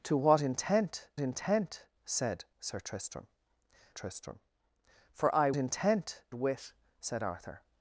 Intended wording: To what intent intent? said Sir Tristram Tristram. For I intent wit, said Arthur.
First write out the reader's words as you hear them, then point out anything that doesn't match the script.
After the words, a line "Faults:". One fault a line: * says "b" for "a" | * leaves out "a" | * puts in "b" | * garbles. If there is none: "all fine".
To what intent intent? said Sir Tristram Tristram. For I intent wit, said Arthur.
Faults:
all fine